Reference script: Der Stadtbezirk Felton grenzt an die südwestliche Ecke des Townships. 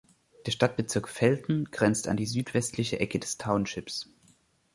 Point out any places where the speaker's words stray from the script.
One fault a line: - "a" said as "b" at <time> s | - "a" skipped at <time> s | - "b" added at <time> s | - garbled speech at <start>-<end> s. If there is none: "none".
none